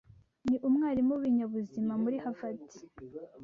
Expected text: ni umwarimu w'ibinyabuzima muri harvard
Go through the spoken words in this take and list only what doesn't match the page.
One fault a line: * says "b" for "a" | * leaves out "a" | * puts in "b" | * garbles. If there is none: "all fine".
all fine